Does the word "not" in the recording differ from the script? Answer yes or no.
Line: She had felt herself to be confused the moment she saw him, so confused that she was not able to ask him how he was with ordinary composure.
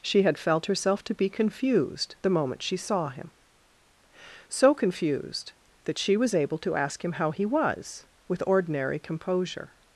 yes